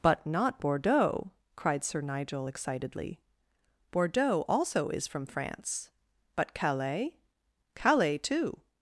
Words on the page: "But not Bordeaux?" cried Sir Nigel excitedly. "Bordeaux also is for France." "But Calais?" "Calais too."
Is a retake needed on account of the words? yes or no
yes